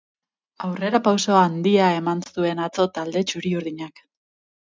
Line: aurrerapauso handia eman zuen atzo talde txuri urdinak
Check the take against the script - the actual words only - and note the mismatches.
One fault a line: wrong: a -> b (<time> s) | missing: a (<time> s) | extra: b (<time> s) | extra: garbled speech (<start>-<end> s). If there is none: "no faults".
no faults